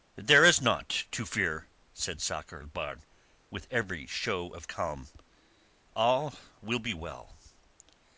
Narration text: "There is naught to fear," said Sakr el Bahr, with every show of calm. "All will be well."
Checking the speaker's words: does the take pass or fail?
pass